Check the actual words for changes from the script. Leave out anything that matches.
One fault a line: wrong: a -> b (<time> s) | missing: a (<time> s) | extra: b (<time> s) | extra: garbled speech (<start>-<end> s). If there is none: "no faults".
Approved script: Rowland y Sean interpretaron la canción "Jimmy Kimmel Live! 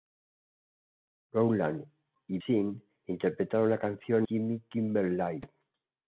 no faults